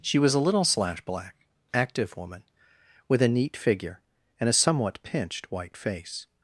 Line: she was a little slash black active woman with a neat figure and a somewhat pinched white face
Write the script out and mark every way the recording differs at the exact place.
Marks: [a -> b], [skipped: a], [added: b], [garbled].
she was a little slash black active woman with a neat figure and a somewhat pinched white face